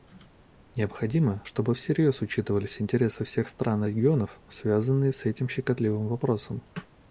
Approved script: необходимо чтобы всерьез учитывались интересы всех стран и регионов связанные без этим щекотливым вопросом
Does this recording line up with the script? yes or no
no